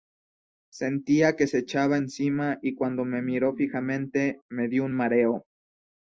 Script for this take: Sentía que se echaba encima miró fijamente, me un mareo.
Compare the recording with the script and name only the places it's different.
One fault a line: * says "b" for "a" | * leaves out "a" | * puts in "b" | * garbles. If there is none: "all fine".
* puts in "y cuando me"
* puts in "dio"